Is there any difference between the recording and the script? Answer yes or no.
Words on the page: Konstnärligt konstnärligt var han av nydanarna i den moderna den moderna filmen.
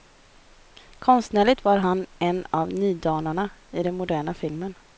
yes